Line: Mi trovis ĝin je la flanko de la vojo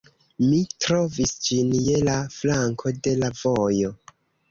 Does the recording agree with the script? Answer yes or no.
yes